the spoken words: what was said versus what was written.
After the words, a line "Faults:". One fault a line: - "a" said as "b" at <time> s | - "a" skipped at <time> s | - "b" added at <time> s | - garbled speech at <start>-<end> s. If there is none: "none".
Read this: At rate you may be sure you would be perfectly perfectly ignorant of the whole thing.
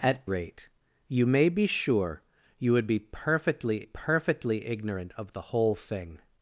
At rate you may be sure you would be perfectly perfectly ignorant of the whole thing.
Faults:
none